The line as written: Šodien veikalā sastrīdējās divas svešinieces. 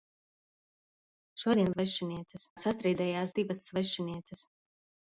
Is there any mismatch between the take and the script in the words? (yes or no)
yes